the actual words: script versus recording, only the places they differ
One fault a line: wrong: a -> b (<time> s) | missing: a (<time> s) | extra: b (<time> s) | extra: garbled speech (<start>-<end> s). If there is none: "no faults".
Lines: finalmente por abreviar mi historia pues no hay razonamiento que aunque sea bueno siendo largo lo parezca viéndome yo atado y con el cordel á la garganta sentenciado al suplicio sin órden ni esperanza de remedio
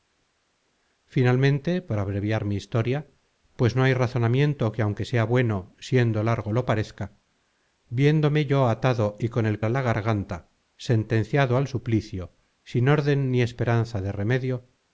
missing: cordel (9.6 s)